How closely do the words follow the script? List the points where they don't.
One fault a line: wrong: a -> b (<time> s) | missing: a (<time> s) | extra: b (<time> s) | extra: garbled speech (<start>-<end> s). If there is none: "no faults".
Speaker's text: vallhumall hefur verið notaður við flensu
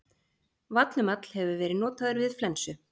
no faults